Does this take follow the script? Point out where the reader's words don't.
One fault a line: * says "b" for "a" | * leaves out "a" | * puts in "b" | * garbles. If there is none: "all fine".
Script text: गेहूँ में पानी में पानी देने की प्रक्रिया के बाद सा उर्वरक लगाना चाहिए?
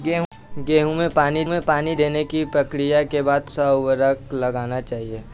all fine